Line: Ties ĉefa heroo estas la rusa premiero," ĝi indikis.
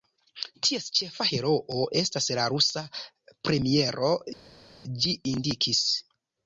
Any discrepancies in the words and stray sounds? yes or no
no